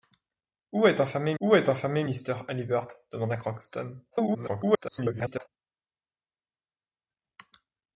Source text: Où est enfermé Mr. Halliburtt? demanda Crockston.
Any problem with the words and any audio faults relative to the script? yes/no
yes